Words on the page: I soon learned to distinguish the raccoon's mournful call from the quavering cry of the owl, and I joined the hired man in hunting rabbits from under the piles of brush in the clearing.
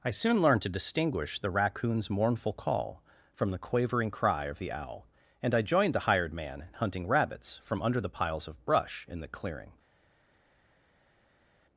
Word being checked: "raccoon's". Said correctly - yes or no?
yes